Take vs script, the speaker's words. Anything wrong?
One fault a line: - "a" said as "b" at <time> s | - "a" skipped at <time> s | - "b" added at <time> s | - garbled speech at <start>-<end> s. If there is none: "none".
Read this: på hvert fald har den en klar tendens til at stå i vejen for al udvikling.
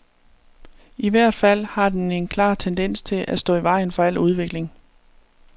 - "på" said as "I" at 1.0 s